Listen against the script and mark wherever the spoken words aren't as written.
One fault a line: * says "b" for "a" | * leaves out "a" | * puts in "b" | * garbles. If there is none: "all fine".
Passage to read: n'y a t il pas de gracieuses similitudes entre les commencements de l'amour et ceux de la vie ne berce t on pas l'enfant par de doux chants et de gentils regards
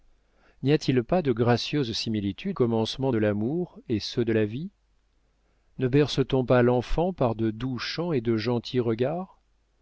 * leaves out "entre les"